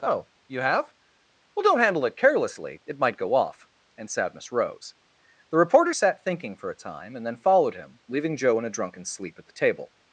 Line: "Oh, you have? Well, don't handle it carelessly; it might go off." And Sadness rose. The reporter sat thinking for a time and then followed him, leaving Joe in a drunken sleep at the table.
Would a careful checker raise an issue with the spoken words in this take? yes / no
no